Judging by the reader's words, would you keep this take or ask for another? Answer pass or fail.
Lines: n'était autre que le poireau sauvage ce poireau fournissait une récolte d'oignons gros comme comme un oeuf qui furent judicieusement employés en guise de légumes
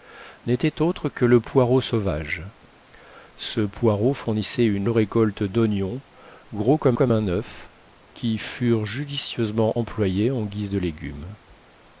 pass